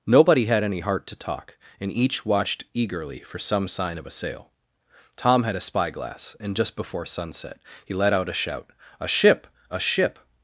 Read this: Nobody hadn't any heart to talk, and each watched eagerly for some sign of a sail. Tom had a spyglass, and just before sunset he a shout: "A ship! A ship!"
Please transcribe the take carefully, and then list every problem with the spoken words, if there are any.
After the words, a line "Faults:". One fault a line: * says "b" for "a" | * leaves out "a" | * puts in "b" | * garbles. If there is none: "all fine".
Nobody had any heart to talk, and each watched eagerly for some sign of a sail. Tom had a spyglass, and just before sunset he let out a shout: "A ship! A ship!"
Faults:
* says "had" for "hadn't"
* puts in "let out"